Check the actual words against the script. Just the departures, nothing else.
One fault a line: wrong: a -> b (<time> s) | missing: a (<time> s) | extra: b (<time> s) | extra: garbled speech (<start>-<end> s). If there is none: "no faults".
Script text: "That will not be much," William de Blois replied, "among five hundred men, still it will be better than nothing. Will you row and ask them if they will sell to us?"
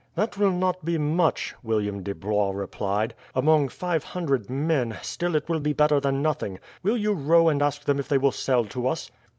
no faults